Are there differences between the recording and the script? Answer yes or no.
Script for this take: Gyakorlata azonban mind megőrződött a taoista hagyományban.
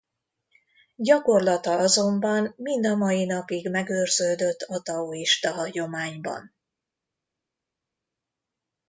yes